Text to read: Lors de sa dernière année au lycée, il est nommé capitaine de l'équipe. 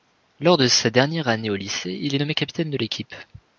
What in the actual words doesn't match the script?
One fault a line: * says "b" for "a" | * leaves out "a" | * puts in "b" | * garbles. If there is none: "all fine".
all fine